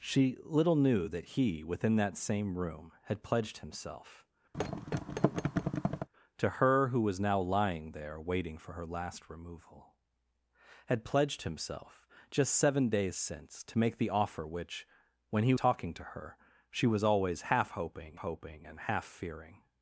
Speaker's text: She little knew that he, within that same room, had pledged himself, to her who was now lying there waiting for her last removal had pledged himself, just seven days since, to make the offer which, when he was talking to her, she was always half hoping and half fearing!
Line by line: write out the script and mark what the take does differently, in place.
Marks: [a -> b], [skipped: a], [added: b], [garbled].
She little knew that he, within that same room, had pledged himself, to her who was now lying there waiting for her last removal had pledged himself, just seven days since, to make the offer which, when he [skipped: was] talking to her, she was always half hoping [added: hoping] and half fearing!